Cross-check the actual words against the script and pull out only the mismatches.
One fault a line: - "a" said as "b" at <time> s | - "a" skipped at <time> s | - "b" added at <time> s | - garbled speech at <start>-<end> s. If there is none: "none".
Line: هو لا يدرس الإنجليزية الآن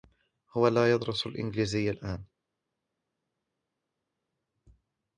none